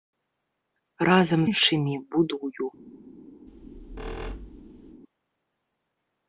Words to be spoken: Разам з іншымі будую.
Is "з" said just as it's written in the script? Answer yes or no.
no